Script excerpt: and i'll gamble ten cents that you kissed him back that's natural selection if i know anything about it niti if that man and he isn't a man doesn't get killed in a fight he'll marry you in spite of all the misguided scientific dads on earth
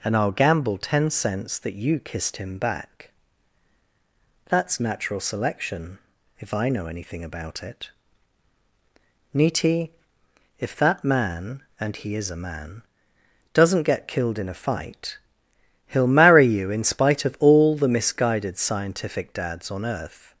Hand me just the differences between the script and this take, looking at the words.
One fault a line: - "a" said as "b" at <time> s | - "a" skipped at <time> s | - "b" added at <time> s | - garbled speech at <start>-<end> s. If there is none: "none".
- "isn't" said as "is" at 12.2 s